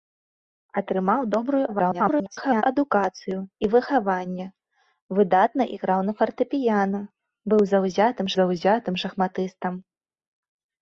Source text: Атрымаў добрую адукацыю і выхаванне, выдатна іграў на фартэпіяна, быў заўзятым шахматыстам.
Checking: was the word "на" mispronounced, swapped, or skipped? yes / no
no